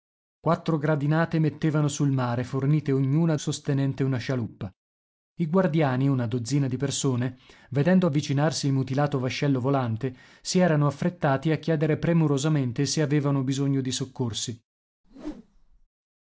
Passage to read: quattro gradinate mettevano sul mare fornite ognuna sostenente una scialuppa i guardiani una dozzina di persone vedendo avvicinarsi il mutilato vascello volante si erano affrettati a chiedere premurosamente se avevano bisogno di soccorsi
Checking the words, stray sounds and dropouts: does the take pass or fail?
fail